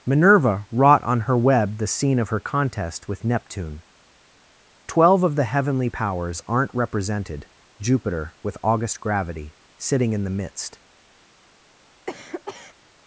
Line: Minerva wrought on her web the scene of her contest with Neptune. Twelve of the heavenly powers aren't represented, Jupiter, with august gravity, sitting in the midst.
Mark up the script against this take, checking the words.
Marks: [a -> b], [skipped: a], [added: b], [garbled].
Minerva wrought on her web the scene of her contest with Neptune. Twelve of the heavenly powers aren't represented, Jupiter, with august gravity, sitting in the midst.